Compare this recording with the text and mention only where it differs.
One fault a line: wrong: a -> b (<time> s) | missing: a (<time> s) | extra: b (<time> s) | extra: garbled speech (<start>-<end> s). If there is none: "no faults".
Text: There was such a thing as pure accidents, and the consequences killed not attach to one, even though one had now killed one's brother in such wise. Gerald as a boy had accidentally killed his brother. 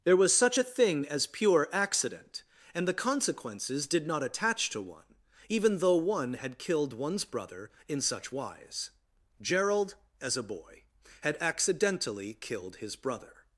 wrong: accidents -> accident (1.7 s)
wrong: killed -> did (3.9 s)
missing: now (6.6 s)